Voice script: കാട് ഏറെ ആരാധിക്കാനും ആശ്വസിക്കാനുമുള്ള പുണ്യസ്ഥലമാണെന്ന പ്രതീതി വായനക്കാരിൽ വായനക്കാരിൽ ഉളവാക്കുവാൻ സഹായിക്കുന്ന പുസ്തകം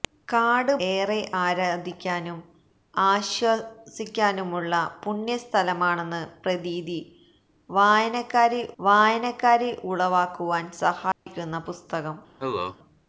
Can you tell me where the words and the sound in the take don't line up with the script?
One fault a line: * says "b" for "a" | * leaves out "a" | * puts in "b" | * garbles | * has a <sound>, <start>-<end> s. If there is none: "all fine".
* has a dropout, 11.1-11.3 s
* has a cough, 12.4-12.8 s